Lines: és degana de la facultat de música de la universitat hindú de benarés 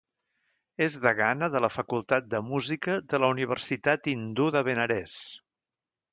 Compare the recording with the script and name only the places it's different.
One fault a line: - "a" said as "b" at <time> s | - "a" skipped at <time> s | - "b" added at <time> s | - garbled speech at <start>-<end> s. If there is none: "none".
none